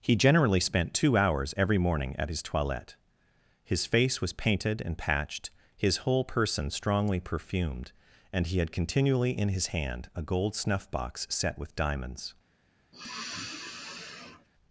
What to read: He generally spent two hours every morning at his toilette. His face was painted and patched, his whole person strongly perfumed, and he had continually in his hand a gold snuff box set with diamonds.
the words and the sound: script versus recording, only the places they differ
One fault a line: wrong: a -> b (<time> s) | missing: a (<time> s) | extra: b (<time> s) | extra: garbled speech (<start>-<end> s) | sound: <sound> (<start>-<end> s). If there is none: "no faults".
sound: sigh (12.9-14.5 s)